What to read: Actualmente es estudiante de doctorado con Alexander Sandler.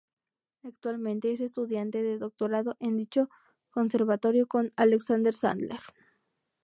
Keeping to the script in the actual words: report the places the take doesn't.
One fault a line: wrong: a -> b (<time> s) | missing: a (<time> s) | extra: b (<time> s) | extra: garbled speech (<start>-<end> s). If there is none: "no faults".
extra: en dicho Conservatorio (2.8 s)